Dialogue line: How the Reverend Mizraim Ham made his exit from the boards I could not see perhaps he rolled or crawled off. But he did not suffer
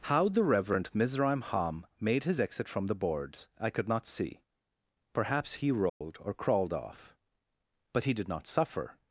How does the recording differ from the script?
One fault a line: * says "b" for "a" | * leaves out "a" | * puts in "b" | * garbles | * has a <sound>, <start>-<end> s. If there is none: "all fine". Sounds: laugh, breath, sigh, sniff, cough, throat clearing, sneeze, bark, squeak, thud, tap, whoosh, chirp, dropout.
* has a dropout, 5.9-6.0 s